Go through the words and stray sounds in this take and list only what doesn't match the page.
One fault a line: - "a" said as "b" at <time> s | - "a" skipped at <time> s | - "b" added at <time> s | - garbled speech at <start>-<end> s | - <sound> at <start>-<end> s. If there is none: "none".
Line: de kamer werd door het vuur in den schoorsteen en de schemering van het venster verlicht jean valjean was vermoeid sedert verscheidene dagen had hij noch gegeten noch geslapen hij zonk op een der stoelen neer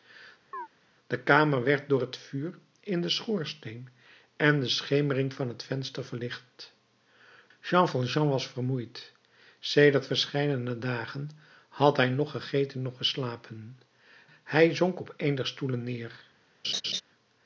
- chirp at 0.5-0.7 s
- laugh at 16.6-17.0 s